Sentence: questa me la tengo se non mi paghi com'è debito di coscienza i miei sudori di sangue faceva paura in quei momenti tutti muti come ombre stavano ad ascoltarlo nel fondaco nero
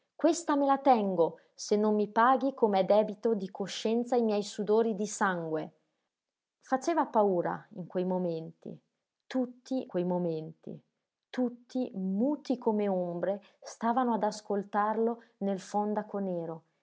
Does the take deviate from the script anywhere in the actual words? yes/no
yes